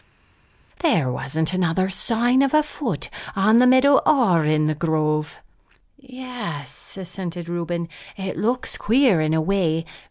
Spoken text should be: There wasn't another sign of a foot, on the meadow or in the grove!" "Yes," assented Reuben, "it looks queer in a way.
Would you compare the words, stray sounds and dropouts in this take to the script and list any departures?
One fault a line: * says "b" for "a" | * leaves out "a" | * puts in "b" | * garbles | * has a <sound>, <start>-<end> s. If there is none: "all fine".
all fine